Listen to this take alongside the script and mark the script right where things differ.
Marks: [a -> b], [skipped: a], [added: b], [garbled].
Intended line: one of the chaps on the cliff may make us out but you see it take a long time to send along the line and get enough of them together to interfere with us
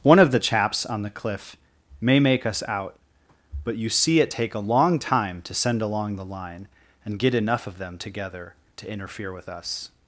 one of the chaps on the cliff may make us out but you see it take a long time to send along the line and get enough of them together to interfere with us